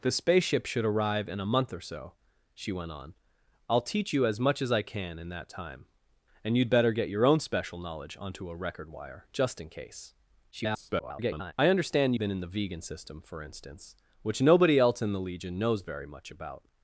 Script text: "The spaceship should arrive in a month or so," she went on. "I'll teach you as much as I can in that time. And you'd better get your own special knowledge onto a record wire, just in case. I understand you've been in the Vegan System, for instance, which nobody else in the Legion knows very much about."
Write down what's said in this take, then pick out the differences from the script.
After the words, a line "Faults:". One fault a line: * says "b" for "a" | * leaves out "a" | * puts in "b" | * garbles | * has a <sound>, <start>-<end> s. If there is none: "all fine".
"The spaceship should arrive in a month or so," she went on. "I'll teach you as much as I can in that time. And you'd better get your own special knowledge onto a record wire, just in case. [garbled] I understand been in the Vegan System, for instance, which nobody else in the Legion knows very much about."
Faults:
* garbles
* leaves out "you've"